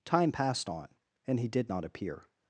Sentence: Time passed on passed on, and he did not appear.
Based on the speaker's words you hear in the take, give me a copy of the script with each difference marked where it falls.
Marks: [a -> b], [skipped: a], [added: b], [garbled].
Time passed on [skipped: passed on,] and he did not appear.